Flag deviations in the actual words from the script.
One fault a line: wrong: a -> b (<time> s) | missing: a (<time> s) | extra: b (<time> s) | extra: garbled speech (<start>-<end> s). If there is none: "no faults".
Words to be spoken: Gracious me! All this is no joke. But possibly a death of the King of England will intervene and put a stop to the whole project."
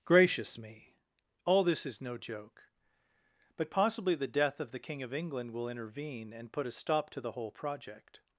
wrong: a -> the (4.2 s)